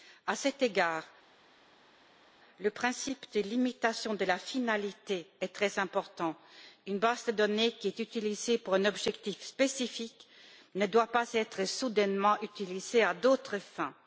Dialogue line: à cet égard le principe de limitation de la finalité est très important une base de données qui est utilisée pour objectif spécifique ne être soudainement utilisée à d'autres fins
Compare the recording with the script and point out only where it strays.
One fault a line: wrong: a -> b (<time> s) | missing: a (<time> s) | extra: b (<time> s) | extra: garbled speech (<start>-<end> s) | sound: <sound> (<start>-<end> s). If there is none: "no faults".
extra: un (8.7 s)
extra: doit pas (10.9 s)